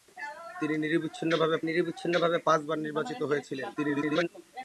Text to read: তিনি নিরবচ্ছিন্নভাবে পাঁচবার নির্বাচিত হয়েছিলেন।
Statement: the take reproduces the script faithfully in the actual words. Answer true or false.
false